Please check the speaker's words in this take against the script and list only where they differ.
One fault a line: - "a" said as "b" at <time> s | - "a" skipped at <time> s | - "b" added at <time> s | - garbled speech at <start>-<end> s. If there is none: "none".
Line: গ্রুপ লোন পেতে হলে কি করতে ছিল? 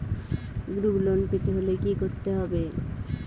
- "ছিল" said as "হবে" at 2.4 s